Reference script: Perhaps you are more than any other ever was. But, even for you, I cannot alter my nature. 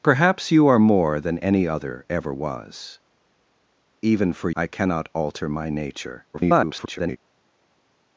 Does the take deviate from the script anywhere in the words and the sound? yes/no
yes